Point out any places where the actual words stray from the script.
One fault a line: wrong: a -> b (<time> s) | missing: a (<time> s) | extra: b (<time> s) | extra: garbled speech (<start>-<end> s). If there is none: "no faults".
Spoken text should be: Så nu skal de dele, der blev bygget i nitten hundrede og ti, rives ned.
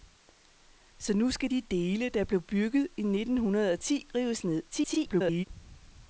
extra: garbled speech (4.7-5.4 s)